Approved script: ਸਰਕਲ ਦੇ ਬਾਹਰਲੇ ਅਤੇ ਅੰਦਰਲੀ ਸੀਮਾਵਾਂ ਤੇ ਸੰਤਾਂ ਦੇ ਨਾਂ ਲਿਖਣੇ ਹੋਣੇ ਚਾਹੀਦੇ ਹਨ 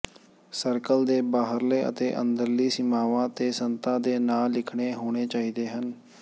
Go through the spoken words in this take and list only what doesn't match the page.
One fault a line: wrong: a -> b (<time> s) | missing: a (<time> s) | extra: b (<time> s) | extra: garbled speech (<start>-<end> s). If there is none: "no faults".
no faults